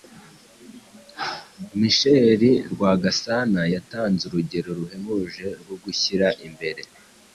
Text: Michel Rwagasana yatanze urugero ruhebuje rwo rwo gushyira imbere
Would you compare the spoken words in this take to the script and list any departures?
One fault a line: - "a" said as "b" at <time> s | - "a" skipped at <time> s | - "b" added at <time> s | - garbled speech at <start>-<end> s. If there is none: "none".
- "rwo" skipped at 5.7 s